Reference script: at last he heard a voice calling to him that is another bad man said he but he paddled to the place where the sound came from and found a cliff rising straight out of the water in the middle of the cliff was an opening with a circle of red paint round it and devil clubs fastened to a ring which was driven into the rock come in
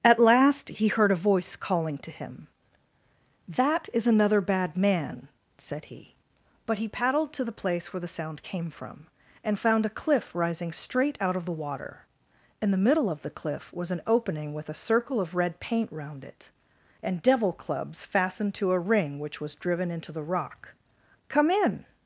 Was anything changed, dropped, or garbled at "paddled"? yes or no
no